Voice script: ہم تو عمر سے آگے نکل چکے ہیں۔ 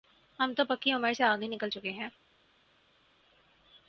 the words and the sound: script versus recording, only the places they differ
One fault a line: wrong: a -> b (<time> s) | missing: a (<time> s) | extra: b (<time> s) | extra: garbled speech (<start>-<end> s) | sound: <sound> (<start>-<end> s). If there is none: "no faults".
extra: پکی (0.7 s)